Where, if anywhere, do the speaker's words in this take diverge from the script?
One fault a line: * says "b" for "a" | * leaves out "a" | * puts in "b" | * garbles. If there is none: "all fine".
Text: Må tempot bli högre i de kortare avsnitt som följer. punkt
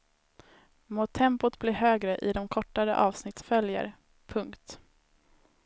* leaves out "som"